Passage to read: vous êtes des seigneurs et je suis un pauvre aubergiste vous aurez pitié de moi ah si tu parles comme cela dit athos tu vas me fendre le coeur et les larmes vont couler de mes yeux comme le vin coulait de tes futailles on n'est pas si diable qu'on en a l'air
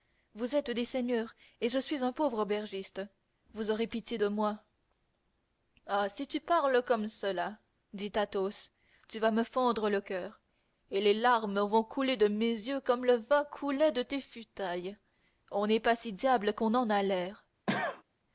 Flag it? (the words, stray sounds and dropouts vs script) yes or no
yes